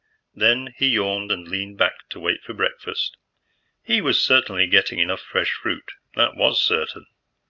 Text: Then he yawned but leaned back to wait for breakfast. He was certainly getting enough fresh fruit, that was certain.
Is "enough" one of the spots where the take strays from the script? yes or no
no